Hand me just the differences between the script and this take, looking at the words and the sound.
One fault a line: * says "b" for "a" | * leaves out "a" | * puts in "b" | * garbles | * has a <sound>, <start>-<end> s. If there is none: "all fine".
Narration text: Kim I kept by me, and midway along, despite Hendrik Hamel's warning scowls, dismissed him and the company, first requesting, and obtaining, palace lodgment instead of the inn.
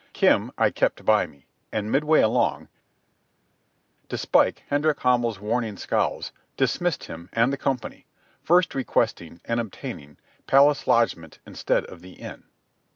all fine